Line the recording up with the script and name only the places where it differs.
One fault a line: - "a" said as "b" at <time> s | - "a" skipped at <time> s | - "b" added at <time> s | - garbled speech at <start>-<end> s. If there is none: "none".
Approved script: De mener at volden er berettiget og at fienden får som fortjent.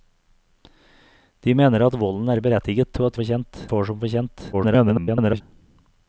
- "fienden" said as "fortjent" at 3.2 s
- garbled speech at 4.5-5.4 s